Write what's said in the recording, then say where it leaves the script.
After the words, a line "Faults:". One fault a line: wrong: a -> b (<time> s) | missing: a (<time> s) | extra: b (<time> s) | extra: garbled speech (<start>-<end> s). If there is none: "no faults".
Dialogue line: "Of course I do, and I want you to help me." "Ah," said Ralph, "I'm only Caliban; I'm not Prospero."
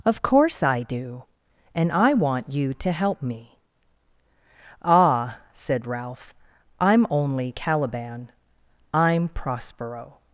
"Of course I do, and I want you to help me." "Ah," said Ralph, "I'm only Caliban; I'm Prospero."
Faults:
missing: not (9.3 s)